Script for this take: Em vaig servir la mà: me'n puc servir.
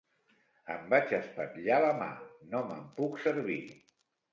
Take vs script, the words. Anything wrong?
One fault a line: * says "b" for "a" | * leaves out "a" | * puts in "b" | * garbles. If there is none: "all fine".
* says "espatllar" for "servir"
* puts in "no"